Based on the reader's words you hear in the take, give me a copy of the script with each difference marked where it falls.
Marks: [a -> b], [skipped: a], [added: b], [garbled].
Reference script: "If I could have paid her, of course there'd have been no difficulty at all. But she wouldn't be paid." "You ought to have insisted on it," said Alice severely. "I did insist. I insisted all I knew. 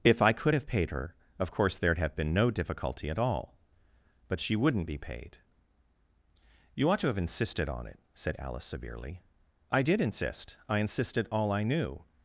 "If I could have paid her, of course there'd have been no difficulty at all. But she wouldn't be paid." "You ought to have insisted on it," said Alice severely. "I did insist. I insisted all I knew.